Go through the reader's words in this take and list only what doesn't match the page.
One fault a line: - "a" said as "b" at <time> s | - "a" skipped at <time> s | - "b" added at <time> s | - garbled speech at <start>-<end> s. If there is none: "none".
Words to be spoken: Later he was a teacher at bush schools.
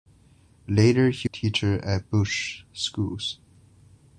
- "was" skipped at 1.3 s